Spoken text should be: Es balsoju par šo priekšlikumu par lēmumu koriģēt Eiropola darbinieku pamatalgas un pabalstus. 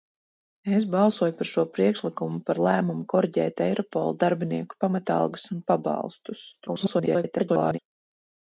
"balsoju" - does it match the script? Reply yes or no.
yes